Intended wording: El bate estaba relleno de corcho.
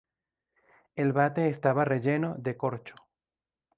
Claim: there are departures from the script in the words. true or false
false